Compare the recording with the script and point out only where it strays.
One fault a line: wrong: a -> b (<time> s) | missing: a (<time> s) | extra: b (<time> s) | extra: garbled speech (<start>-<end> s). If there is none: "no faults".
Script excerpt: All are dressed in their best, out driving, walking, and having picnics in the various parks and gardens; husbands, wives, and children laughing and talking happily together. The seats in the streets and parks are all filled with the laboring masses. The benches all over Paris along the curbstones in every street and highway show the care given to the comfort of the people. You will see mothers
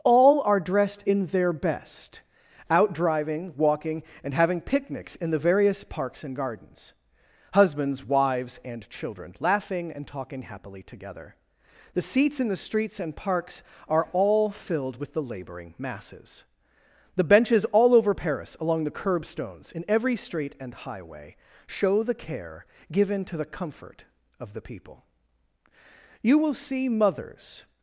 no faults